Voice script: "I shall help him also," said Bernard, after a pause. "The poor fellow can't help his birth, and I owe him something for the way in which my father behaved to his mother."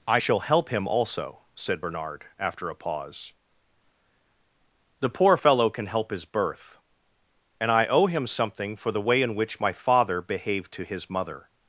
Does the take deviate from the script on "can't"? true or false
true